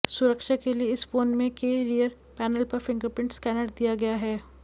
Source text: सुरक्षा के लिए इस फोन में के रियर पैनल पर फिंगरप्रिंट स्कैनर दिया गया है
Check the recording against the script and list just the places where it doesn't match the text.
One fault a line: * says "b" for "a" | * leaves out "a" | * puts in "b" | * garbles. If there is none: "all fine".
all fine